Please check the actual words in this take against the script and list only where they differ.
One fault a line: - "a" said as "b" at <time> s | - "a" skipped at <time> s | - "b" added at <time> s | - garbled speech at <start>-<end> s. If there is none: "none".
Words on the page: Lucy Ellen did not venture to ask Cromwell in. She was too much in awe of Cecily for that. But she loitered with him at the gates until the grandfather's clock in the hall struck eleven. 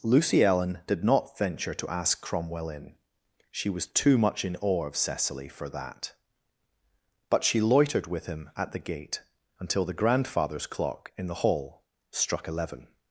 - "gates" said as "gate" at 8.8 s